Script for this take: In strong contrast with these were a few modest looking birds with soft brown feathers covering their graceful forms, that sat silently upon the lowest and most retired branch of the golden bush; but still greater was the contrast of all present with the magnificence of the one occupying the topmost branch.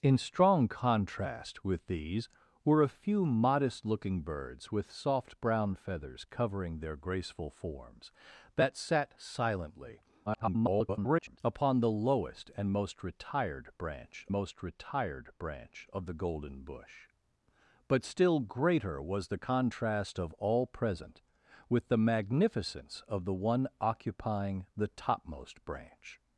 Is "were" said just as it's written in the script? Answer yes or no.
yes